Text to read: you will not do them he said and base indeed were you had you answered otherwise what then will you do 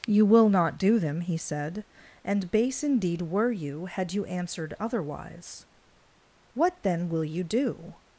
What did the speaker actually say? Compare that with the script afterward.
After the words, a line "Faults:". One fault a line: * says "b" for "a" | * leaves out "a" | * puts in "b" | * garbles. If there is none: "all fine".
you will not do them he said and base indeed were you had you answered otherwise what then will you do
Faults:
all fine